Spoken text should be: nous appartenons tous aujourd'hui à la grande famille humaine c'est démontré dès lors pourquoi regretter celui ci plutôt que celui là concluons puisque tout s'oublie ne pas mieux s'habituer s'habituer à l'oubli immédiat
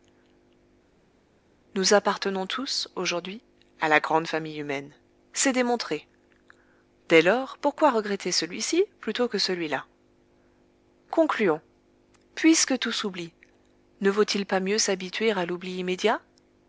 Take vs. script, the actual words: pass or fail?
fail